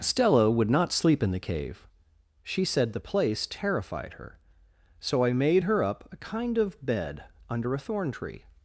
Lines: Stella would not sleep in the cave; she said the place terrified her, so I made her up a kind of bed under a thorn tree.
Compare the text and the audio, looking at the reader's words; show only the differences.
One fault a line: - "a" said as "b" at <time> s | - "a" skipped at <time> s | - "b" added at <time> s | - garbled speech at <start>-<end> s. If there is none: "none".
none